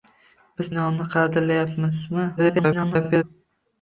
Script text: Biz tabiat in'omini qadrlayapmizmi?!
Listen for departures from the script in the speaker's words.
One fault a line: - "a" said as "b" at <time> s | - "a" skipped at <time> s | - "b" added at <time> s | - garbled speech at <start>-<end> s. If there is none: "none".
- "tabiat" skipped at 0.7 s
- garbled speech at 2.4-3.2 s